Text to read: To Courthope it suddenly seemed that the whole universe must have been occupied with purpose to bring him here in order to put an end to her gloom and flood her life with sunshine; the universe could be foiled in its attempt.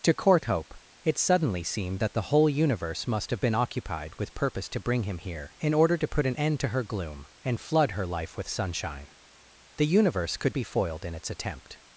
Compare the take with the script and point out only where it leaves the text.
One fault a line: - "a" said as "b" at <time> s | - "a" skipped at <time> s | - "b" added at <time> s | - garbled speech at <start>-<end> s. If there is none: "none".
none